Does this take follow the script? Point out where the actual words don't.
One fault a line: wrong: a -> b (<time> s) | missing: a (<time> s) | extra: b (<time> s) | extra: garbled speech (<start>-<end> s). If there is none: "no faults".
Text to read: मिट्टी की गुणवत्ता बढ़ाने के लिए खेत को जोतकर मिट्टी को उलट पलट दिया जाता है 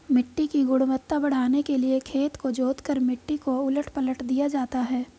no faults